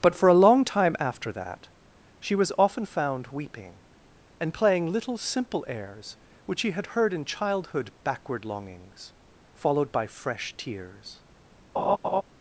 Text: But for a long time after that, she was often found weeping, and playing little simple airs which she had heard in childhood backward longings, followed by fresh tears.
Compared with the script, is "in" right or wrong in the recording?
right